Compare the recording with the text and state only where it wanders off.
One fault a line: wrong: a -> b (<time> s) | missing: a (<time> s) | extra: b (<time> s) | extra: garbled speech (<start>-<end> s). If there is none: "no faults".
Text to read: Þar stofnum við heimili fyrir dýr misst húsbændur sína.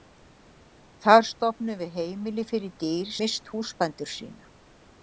no faults